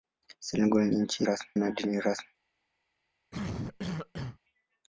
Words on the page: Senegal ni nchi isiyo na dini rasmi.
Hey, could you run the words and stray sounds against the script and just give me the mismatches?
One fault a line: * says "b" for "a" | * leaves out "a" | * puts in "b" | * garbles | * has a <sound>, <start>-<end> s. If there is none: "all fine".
* says "rasmi" for "isiyo"
* has a cough, 3.3-4.4 s